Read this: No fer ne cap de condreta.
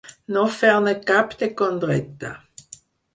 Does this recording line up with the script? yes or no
yes